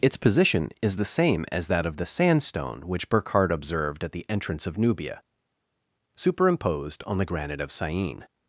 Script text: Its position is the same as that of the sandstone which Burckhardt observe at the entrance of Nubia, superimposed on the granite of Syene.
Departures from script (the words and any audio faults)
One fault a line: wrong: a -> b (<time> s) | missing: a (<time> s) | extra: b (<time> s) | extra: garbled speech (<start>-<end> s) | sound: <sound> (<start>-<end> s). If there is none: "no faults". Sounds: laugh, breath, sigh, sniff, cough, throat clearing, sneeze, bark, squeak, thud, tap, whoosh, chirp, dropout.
wrong: observe -> observed (3.5 s)